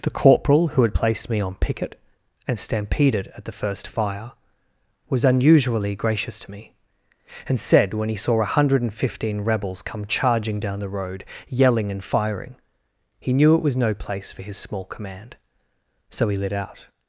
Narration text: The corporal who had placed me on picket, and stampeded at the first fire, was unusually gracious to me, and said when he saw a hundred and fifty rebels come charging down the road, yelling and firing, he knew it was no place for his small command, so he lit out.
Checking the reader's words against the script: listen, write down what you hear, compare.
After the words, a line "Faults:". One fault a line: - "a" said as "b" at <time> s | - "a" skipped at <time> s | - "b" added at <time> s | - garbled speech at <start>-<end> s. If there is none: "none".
The corporal who had placed me on picket, and stampeded at the first fire, was unusually gracious to me, and said when he saw a hundred and fifteen rebels come charging down the road, yelling and firing, he knew it was no place for his small command, so he lit out.
Faults:
- "fifty" said as "fifteen" at 8.9 s